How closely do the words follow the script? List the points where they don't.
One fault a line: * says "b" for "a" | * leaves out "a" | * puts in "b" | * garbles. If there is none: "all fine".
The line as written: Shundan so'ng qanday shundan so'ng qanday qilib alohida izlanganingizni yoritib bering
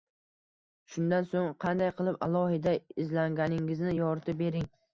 * leaves out "shundan so'ng qanday"